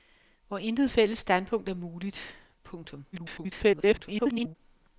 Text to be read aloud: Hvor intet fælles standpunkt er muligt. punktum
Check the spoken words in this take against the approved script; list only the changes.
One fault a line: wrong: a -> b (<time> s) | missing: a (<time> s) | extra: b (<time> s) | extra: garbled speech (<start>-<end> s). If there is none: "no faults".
extra: garbled speech (3.1-4.6 s)